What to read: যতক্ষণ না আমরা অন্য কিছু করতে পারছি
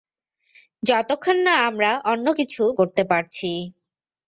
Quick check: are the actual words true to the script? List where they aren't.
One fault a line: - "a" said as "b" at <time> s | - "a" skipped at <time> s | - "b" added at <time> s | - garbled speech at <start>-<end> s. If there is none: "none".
none